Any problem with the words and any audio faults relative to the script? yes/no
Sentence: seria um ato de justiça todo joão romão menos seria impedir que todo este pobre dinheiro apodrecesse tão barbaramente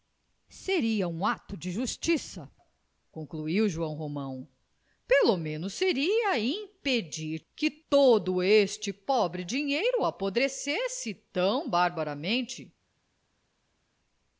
yes